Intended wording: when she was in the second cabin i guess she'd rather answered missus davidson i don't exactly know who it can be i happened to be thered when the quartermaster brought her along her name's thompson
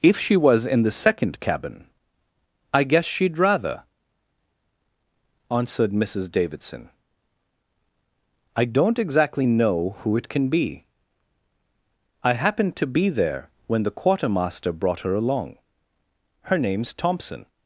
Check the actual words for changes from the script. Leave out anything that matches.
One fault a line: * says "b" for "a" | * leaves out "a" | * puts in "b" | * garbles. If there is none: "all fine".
* says "if" for "when"
* says "there" for "thered"